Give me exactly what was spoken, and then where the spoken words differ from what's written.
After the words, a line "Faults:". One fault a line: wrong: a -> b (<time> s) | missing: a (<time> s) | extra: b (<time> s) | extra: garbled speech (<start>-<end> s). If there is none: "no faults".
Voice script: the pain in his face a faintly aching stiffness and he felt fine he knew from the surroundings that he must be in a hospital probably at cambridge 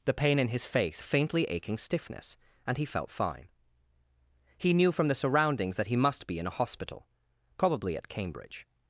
the pain in his face a faintly aching stiffness and he felt fine he knew from the surroundings that he must be in a hospital probably at cambridge
Faults:
no faults